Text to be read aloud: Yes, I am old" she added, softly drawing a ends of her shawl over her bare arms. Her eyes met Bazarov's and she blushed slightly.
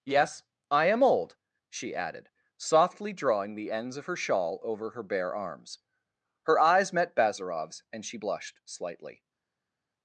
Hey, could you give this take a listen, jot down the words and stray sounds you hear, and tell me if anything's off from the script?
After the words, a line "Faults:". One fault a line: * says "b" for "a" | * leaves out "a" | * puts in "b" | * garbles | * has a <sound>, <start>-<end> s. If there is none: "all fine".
Yes, I am old" she added, softly drawing the ends of her shawl over her bare arms. Her eyes met Bazarov's and she blushed slightly.
Faults:
* says "the" for "a"